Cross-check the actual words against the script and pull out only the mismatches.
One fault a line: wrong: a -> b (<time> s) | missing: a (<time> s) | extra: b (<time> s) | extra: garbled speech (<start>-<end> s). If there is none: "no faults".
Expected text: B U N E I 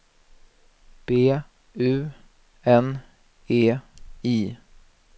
no faults